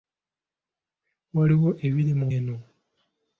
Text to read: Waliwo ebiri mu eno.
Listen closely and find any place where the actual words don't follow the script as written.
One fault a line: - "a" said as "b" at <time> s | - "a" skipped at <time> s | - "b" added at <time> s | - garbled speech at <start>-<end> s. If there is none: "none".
none